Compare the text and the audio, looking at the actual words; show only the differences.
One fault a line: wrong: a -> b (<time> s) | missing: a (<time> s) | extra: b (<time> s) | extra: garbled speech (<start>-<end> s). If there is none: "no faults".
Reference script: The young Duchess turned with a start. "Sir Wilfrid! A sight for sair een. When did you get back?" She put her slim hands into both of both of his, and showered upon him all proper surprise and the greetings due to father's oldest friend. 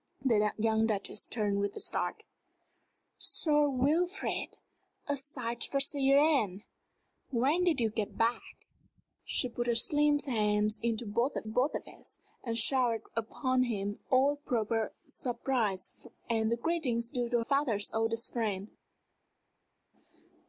no faults